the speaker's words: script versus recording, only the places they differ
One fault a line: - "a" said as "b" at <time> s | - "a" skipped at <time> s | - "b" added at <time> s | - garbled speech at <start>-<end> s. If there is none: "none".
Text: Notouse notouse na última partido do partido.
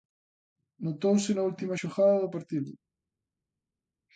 - "notouse" skipped at 1.3 s
- "partido" said as "xogada" at 1.7 s